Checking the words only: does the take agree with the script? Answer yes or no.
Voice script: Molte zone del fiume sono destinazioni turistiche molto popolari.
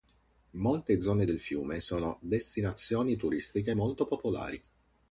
yes